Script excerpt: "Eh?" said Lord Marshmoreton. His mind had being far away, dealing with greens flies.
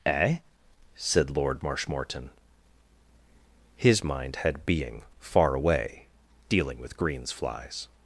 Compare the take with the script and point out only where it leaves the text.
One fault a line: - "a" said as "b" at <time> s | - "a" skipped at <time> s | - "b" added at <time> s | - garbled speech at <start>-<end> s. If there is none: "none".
none